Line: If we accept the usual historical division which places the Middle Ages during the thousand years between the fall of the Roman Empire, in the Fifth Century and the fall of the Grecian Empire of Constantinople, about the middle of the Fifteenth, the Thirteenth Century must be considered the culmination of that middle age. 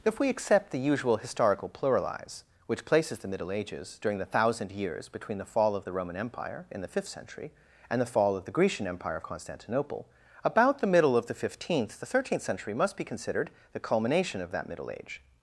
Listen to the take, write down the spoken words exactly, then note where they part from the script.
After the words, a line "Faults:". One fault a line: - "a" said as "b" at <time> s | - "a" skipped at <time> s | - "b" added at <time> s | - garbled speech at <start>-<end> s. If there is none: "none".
If we accept the usual historical pluralize which places the Middle Ages during the thousand years between the fall of the Roman Empire, in the Fifth Century and the fall of the Grecian Empire of Constantinople, about the middle of the Fifteenth, the Thirteenth Century must be considered the culmination of that middle age.
Faults:
- "division" said as "pluralize" at 1.7 s